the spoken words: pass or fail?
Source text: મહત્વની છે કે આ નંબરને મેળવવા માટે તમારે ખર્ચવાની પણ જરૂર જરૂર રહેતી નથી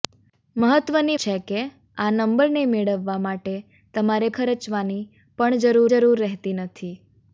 pass